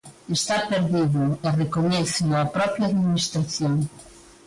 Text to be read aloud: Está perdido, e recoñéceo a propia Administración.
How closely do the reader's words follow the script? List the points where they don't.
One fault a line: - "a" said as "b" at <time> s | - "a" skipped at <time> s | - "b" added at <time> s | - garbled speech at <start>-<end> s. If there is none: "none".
none